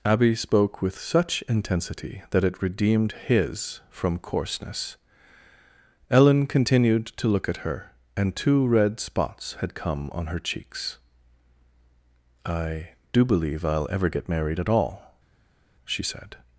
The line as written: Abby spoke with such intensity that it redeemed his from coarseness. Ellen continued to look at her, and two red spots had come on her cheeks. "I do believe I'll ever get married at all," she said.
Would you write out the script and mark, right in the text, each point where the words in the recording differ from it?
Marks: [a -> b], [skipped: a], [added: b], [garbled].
Abby spoke with such intensity that it redeemed his from coarseness. Ellen continued to look at her, and two red spots had come on her cheeks. "I do believe I'll ever get married at all," she said.